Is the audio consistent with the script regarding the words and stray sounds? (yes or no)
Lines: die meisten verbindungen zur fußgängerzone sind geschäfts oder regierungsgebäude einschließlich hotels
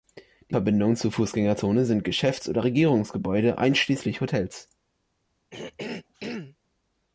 no